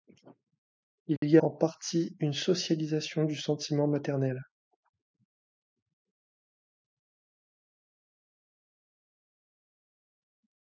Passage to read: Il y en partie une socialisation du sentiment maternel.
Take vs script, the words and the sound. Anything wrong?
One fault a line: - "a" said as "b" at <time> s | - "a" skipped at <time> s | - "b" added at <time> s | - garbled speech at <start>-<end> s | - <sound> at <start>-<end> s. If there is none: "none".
- dropout at 1.2-1.2 s